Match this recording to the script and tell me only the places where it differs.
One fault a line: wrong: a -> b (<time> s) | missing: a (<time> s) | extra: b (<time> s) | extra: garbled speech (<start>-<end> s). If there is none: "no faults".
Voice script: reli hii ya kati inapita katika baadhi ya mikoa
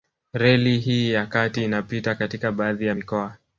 no faults